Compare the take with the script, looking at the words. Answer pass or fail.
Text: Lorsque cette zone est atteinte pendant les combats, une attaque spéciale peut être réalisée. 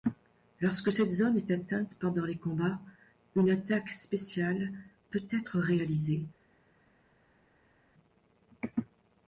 pass